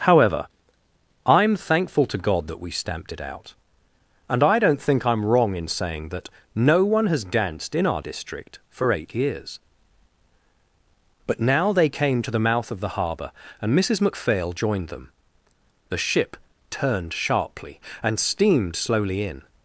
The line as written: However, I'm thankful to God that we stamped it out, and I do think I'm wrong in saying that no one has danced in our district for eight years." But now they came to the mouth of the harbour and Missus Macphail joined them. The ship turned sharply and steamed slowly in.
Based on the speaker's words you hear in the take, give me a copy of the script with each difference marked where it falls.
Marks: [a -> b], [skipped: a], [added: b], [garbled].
However, I'm thankful to God that we stamped it out, and I [do -> don't] think I'm wrong in saying that no one has danced in our district for eight years." But now they came to the mouth of the harbour and Missus Macphail joined them. The ship turned sharply and steamed slowly in.